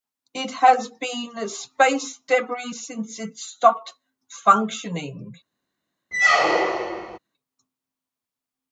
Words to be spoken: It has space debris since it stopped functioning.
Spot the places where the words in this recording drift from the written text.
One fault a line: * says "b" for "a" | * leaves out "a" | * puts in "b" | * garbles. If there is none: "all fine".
* puts in "been"